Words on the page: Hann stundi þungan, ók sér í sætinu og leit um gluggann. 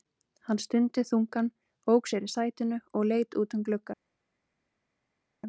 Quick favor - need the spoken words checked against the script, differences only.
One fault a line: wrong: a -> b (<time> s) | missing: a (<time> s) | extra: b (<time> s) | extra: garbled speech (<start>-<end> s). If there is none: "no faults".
extra: út (3.4 s)